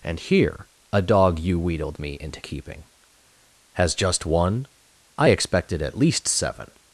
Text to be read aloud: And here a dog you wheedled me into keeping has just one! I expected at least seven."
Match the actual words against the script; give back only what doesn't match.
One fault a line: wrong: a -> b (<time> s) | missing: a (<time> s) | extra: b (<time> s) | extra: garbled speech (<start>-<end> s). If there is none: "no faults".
no faults